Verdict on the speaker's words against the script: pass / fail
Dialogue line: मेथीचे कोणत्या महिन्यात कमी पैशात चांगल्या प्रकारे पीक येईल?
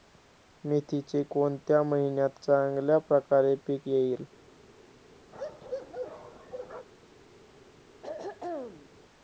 fail